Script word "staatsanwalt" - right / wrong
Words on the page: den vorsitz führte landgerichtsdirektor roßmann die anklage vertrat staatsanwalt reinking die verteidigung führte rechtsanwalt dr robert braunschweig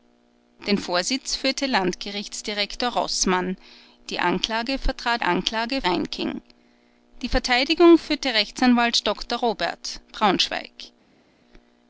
wrong